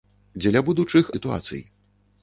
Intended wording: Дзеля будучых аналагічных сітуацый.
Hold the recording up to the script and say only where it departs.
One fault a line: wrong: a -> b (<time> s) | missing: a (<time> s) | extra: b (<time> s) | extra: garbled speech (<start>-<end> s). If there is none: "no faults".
missing: аналагічных (1.1 s)